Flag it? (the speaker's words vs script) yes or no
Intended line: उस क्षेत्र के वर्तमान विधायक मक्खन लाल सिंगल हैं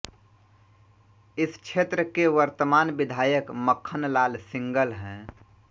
yes